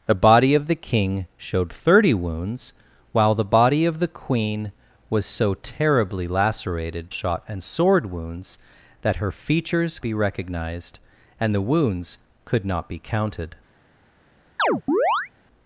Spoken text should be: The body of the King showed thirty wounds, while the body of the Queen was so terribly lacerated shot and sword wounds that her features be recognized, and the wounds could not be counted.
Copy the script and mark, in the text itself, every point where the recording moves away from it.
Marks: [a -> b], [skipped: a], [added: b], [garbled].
The body of the King showed thirty wounds, while the body of the Queen was so terribly lacerated shot and sword wounds that her features be recognized, and the wounds could not be counted.